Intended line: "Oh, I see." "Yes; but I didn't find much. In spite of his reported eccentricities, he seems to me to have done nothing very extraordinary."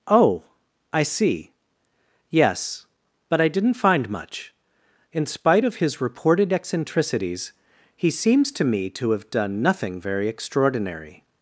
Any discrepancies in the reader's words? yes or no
no